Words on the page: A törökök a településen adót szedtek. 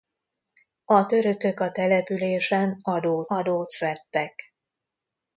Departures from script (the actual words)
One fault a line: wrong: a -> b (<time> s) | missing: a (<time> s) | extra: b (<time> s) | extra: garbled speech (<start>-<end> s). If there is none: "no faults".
extra: adót (3.3 s)